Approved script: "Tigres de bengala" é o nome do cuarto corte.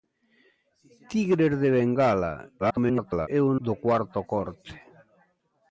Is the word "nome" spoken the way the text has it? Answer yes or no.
no